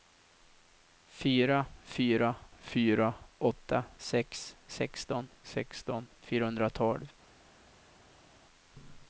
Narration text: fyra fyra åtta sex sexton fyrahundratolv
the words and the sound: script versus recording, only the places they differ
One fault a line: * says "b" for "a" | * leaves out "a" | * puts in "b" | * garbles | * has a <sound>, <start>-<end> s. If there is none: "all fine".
* puts in "fyra"
* puts in "sexton"